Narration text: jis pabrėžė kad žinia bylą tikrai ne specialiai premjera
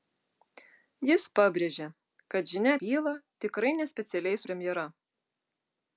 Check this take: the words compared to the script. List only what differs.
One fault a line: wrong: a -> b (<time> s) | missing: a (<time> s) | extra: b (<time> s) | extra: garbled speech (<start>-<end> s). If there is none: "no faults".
no faults